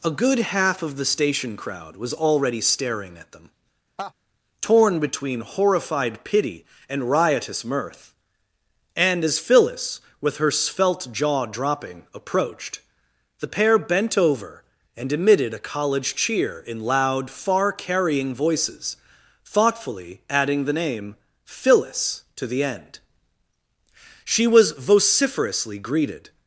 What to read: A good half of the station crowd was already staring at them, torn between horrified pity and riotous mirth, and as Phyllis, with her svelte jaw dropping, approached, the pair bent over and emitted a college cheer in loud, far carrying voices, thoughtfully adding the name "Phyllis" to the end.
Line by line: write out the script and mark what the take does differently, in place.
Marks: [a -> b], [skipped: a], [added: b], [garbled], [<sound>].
A good half of the station crowd was already staring at them, [laugh] torn between horrified pity and riotous mirth, and as Phyllis, with her svelte jaw dropping, approached, the pair bent over and emitted a college cheer in loud, far carrying voices, thoughtfully adding the name "Phyllis" to the end. [added: She was vociferously greeted]